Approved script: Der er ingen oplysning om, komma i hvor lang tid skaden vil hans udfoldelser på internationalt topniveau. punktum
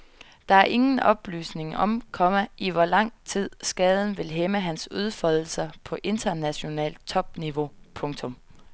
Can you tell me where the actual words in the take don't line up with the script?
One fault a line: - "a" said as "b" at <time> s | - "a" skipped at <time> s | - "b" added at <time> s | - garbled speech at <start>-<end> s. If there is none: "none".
- "hæmme" added at 4.3 s